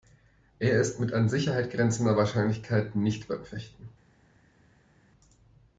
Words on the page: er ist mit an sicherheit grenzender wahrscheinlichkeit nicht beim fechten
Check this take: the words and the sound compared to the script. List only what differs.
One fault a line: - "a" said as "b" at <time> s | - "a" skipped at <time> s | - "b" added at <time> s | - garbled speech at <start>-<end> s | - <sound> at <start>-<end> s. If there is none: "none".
none